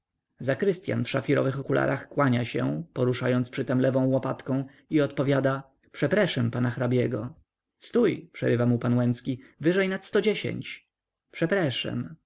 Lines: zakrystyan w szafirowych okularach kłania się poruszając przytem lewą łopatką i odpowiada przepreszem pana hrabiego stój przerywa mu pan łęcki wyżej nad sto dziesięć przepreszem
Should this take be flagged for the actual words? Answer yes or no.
no